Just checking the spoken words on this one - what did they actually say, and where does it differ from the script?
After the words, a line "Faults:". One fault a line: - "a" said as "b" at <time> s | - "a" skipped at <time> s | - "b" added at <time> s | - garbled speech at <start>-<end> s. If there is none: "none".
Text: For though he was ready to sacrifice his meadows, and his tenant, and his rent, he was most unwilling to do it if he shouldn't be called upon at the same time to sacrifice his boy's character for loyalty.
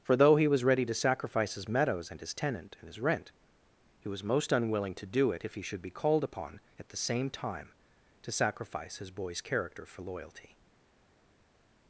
For though he was ready to sacrifice his meadows, and his tenant, and his rent, he was most unwilling to do it if he should be called upon at the same time to sacrifice his boy's character for loyalty.
Faults:
- "shouldn't" said as "should" at 5.6 s